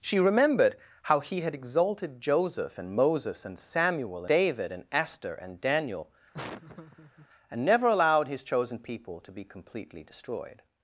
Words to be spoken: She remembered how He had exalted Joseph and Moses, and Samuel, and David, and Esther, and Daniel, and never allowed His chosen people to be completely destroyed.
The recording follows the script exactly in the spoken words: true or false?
false